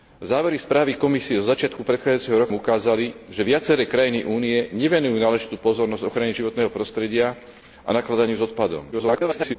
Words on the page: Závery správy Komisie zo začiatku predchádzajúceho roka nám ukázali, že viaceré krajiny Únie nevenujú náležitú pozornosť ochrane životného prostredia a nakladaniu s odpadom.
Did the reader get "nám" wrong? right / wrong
wrong